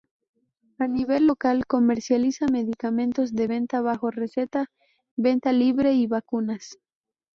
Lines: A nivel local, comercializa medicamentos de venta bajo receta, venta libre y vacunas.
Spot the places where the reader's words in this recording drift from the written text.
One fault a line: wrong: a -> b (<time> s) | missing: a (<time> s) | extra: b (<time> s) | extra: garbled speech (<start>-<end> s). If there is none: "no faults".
no faults